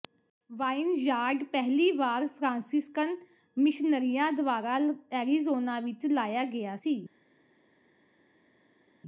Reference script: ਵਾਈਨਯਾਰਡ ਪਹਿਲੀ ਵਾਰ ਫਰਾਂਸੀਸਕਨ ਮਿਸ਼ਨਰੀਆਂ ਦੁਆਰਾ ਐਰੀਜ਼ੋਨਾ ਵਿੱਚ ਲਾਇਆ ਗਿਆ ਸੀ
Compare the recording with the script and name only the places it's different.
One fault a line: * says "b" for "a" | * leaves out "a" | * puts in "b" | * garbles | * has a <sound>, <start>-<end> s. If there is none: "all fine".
all fine